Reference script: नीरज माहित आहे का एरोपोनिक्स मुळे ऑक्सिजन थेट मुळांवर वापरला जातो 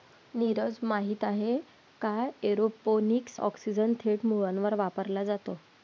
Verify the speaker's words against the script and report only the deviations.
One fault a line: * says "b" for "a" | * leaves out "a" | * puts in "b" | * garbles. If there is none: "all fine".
* leaves out "मुळे"